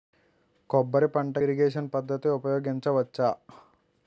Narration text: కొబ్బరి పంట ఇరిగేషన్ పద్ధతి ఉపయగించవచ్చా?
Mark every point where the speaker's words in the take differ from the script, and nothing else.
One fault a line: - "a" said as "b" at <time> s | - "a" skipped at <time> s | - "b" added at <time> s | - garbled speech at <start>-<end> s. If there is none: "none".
none